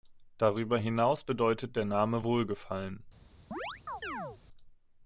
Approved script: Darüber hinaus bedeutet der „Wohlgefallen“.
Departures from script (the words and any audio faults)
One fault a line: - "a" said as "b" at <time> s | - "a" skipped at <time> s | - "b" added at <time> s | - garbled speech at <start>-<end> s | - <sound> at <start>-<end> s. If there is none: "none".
- "Name" added at 1.8 s
- chirp at 3.5-4.4 s